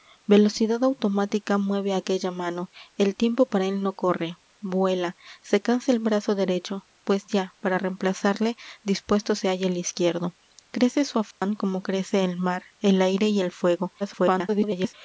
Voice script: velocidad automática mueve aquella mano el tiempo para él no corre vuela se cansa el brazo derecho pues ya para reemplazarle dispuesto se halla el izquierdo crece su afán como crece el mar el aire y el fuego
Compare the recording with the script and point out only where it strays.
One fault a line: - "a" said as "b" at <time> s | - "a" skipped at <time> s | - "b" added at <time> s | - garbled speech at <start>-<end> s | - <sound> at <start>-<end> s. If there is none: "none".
- dropout at 11.3-11.4 s
- garbled speech at 14.0-14.9 s